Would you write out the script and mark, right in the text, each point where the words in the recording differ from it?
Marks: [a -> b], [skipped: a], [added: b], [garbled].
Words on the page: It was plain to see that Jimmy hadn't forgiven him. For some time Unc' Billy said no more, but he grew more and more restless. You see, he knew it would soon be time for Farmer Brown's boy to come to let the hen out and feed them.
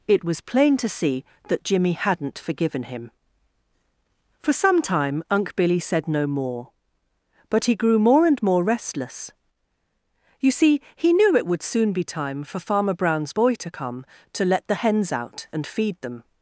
It was plain to see that Jimmy hadn't forgiven him. For some time Unc' Billy said no more, but he grew more and more restless. You see, he knew it would soon be time for Farmer Brown's boy to come to let the [hen -> hens] out and feed them.